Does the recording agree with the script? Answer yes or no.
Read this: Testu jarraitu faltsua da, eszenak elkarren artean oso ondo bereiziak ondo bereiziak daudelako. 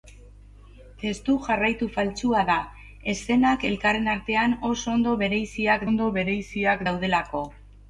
yes